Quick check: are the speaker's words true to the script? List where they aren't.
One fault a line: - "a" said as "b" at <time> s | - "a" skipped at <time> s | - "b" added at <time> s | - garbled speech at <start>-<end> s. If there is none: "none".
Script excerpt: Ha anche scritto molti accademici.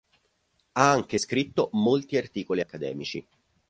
- "articoli" added at 2.1 s